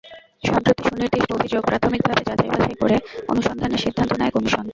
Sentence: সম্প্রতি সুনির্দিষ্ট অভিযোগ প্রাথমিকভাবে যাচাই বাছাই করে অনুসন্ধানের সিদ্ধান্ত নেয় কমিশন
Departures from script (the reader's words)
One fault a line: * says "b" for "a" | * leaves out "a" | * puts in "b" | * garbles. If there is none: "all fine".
all fine